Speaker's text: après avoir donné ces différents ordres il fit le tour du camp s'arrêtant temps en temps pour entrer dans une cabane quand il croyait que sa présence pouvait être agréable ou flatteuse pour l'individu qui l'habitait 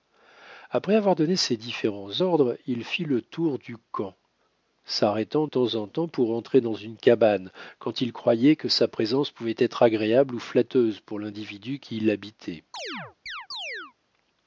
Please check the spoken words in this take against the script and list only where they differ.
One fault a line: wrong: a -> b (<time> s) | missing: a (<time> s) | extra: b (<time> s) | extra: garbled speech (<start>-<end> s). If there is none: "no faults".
no faults